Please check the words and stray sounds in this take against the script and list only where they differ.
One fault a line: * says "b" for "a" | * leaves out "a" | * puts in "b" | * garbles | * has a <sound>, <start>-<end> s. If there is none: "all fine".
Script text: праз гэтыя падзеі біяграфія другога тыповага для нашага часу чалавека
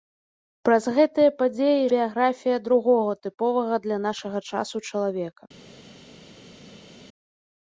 all fine